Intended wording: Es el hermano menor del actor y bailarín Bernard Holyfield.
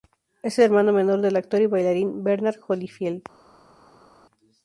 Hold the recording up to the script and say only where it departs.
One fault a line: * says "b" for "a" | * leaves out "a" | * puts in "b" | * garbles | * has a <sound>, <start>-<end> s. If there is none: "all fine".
all fine